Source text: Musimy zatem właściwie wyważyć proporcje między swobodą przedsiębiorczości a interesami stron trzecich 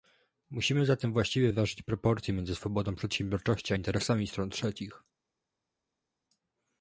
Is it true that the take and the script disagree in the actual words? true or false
false